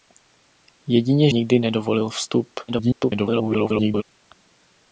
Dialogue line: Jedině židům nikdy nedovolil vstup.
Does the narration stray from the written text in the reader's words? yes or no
yes